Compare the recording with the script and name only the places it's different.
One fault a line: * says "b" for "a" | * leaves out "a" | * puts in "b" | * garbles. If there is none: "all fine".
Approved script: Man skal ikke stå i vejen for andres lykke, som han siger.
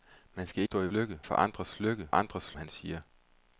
* leaves out "ikke"
* says "lykke" for "vejen"
* says "andres" for "som"